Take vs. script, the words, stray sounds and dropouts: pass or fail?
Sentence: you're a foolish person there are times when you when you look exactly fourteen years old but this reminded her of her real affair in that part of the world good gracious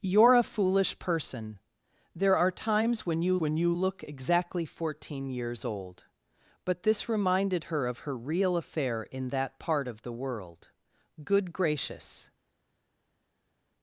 pass